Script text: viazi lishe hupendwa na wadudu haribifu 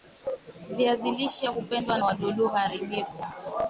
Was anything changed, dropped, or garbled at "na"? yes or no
yes